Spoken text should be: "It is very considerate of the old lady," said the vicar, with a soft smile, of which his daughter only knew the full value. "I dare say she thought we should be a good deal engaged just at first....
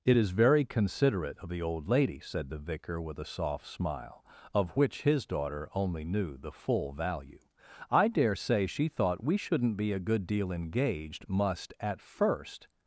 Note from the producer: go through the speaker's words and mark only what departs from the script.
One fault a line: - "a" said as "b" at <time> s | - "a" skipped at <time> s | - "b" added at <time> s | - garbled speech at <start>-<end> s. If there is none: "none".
- "should" said as "shouldn't" at 9.4 s
- "just" said as "must" at 11.3 s